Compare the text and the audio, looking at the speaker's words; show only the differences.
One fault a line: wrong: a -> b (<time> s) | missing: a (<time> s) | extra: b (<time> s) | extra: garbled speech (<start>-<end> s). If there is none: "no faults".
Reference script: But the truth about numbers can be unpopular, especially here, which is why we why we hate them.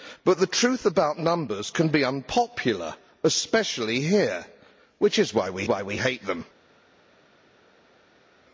no faults